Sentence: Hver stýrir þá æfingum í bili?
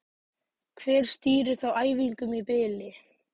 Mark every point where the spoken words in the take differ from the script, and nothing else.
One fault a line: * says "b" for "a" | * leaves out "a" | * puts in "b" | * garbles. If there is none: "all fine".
all fine